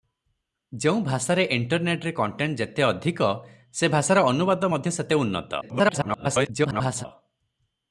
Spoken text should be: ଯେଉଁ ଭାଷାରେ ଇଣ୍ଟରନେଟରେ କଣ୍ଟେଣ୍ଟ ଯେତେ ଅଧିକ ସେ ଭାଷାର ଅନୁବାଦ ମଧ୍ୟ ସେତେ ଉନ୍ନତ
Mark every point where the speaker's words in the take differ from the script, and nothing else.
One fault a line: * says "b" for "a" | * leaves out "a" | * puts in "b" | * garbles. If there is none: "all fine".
* garbles